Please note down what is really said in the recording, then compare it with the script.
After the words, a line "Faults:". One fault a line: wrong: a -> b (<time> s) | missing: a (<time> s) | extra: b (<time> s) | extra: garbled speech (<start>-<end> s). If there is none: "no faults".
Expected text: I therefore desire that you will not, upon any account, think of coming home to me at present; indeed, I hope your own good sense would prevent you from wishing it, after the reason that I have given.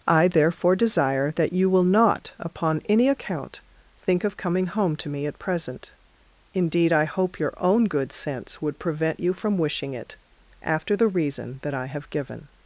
I therefore desire that you will not, upon any account, think of coming home to me at present; indeed, I hope your own good sense would prevent you from wishing it, after the reason that I have given.
Faults:
no faults